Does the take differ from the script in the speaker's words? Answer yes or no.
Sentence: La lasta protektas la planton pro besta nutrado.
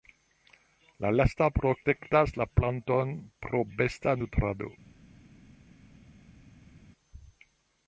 no